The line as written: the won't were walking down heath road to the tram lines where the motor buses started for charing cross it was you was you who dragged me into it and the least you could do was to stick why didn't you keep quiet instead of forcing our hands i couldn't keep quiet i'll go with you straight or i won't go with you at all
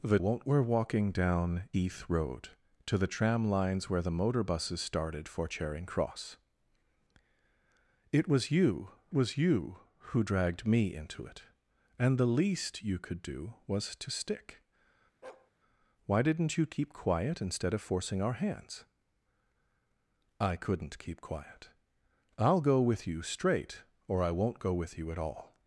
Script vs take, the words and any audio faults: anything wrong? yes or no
yes